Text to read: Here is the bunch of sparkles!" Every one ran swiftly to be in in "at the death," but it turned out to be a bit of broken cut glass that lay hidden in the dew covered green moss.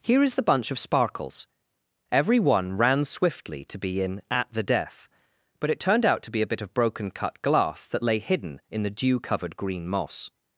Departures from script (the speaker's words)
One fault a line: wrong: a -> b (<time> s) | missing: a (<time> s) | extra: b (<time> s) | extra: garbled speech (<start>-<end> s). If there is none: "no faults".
missing: in (4.2 s)